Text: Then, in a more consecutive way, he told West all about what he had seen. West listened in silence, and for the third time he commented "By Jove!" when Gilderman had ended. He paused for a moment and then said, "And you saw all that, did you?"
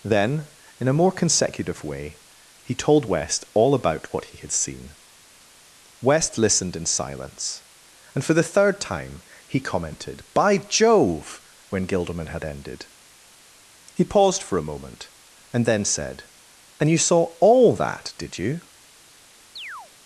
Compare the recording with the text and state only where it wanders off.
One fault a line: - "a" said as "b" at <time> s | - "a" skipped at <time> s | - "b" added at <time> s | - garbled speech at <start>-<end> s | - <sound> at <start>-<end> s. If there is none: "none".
- chirp at 19.6-19.9 s